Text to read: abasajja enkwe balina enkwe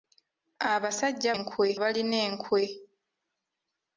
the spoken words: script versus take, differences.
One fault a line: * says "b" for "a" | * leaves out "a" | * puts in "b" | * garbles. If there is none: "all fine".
all fine